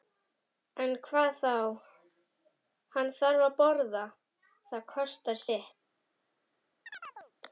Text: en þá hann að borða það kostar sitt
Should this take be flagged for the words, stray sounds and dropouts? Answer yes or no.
yes